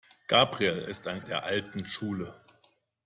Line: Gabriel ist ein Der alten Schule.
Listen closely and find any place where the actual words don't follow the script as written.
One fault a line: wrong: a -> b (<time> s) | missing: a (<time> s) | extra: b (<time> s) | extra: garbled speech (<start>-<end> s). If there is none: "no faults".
no faults